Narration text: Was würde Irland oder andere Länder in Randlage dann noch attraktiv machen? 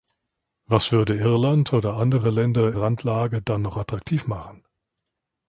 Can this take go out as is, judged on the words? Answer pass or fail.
fail